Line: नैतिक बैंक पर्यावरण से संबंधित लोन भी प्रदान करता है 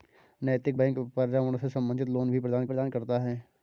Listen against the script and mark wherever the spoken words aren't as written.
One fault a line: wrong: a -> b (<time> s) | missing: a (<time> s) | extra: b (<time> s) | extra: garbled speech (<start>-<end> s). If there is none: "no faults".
extra: प्रदान (2.7 s)